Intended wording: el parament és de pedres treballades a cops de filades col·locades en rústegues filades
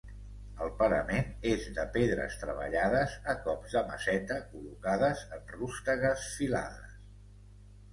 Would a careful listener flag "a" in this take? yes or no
no